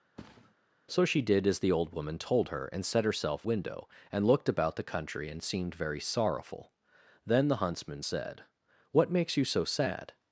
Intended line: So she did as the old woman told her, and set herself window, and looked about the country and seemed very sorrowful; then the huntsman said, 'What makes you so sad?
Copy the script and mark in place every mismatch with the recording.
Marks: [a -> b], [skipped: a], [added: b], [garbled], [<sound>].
[thud] So she did as the old woman told her, and set herself window, and looked about the country and seemed very sorrowful; then the huntsman said, 'What makes you so sad?